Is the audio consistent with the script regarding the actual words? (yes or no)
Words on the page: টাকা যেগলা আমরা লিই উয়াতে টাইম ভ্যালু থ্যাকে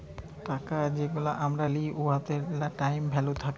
yes